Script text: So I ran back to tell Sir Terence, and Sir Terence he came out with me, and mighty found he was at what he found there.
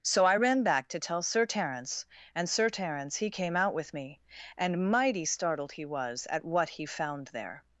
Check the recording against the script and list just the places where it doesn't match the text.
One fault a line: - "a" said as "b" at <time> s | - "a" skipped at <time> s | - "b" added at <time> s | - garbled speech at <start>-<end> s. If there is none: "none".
- "found" said as "startled" at 5.2 s